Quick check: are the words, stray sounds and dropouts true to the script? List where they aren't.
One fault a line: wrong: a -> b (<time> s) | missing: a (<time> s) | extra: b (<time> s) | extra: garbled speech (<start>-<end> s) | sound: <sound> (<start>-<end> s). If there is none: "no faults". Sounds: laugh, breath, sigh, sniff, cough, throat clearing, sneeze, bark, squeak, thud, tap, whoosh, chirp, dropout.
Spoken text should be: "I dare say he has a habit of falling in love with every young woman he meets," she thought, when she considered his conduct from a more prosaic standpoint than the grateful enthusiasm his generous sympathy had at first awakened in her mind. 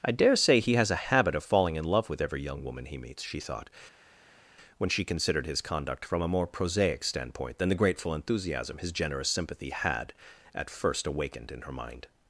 no faults